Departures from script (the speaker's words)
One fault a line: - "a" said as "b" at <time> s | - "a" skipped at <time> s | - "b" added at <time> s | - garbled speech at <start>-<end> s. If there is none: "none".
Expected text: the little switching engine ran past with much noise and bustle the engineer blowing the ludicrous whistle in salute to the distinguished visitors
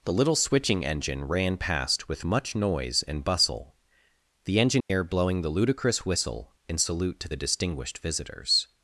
none